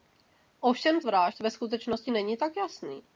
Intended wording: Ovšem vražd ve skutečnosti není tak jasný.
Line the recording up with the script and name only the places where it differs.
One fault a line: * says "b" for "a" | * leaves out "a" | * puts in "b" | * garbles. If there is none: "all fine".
all fine